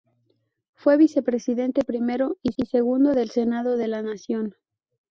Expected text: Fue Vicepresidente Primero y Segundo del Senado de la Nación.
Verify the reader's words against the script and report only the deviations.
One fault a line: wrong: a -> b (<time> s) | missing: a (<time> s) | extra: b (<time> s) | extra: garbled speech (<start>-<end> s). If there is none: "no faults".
extra: y (2.5 s)